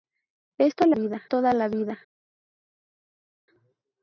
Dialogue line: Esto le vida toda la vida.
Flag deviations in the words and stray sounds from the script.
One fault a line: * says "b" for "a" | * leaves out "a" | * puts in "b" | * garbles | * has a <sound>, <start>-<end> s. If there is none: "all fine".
all fine